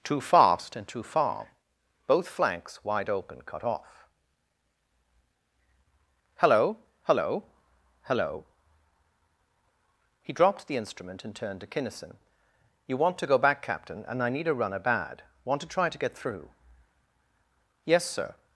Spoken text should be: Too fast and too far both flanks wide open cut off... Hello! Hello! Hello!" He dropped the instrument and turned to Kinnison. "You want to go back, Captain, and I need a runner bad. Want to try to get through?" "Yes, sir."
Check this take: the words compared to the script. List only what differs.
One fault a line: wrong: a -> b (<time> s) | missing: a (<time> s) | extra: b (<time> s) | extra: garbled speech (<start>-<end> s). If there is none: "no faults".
no faults